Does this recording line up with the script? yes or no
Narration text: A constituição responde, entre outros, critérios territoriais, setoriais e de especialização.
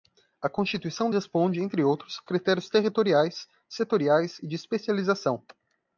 yes